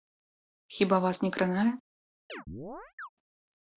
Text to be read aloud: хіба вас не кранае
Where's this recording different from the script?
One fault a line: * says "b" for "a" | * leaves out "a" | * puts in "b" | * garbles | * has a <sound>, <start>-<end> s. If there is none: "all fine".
* has a chirp, 2.3-3.1 s